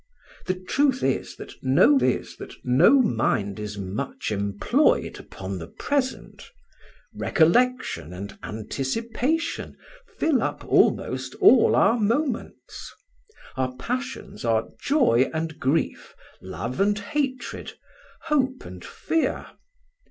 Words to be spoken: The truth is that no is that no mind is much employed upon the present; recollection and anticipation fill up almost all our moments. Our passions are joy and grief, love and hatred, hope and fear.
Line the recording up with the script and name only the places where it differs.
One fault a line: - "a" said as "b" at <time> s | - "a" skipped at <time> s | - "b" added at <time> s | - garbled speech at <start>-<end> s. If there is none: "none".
none